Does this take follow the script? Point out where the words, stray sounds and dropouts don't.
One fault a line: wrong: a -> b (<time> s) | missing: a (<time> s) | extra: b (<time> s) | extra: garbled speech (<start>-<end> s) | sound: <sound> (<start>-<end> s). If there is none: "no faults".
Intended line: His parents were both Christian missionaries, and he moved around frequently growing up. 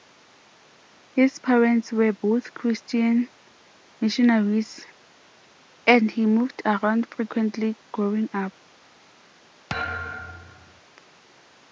sound: thud (9.7-10.8 s)